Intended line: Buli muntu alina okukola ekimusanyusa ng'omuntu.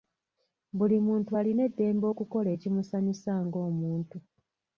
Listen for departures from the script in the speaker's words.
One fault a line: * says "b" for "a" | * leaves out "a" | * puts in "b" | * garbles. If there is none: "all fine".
* puts in "eddembe"